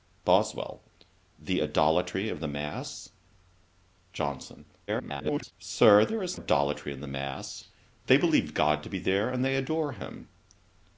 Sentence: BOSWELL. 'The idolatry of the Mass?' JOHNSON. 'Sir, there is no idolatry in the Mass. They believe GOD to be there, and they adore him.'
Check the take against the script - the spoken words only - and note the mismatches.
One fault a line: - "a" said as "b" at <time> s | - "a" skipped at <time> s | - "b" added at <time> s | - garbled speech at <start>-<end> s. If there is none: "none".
- garbled speech at 4.9-5.5 s
- "no" skipped at 6.4 s